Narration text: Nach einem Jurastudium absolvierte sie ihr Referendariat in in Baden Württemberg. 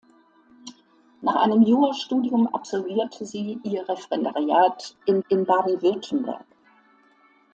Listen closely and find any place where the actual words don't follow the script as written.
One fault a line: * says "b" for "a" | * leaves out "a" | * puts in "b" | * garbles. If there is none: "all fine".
all fine